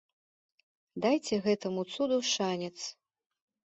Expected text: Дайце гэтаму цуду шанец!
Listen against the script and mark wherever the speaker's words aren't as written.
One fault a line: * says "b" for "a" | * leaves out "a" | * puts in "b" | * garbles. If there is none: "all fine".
all fine